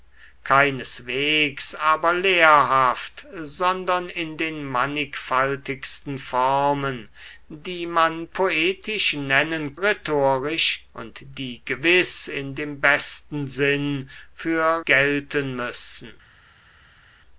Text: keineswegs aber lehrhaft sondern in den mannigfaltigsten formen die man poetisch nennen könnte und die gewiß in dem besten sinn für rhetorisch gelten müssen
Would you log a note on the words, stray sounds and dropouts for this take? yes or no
yes